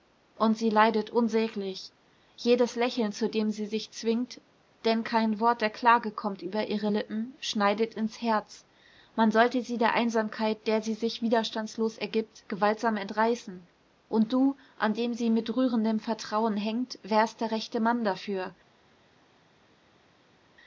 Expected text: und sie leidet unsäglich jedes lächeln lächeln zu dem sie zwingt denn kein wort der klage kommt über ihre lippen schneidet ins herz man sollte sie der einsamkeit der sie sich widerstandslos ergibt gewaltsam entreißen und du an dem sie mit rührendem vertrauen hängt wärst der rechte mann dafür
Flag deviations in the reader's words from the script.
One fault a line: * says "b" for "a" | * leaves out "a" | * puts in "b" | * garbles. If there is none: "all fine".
* leaves out "lächeln"
* puts in "sich"